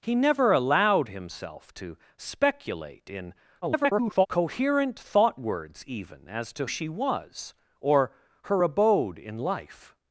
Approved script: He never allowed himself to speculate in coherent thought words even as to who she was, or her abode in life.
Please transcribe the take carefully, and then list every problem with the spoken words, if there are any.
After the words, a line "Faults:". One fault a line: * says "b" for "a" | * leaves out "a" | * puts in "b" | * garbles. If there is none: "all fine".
He never allowed himself to speculate in [garbled] coherent thought words even as to she was, or her abode in life.
Faults:
* garbles
* leaves out "who"